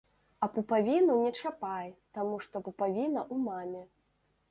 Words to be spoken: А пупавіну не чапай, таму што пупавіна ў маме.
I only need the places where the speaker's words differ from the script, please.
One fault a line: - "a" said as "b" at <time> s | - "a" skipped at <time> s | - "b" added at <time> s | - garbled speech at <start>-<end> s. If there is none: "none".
none